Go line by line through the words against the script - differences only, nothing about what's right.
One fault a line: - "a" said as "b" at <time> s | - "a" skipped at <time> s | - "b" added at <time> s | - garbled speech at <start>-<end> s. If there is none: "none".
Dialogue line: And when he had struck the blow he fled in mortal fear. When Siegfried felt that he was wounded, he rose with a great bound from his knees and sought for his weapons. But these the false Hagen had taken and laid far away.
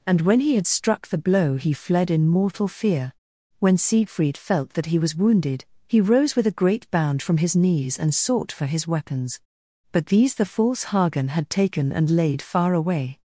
none